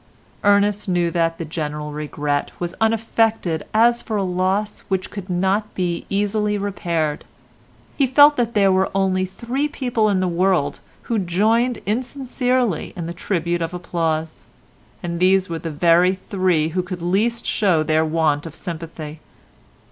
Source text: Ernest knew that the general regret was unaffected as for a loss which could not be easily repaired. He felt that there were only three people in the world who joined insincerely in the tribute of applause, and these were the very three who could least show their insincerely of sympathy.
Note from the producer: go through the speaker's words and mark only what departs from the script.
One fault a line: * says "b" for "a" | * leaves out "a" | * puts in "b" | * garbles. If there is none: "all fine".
* says "want" for "insincerely"